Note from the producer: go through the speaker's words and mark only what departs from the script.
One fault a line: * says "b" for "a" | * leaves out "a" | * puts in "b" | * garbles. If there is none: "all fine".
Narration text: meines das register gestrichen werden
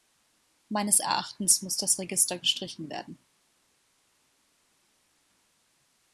* puts in "erachtens muss"